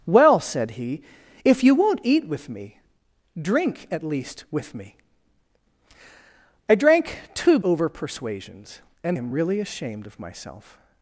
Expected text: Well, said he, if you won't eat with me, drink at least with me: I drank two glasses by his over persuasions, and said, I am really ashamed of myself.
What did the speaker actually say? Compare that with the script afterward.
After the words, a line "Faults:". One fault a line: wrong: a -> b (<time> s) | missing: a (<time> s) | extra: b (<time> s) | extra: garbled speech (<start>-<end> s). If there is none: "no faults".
Well, said he, if you won't eat with me, drink at least with me: I drank two over persuasions, and am really ashamed of myself.
Faults:
missing: glasses by his (7.6 s)
missing: said I (9.2 s)